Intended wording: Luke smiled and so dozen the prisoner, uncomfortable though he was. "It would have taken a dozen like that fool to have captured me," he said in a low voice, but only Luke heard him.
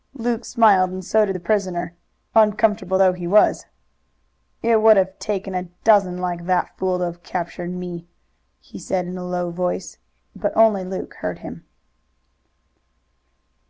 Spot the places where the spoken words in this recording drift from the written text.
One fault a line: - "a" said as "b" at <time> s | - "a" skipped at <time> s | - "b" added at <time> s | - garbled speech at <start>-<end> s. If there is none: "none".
- "dozen" said as "did" at 1.3 s